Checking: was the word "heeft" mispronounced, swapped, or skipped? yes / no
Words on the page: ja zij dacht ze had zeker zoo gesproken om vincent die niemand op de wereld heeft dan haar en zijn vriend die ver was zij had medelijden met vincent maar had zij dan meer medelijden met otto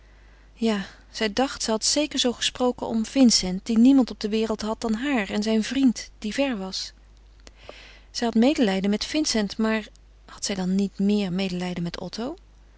yes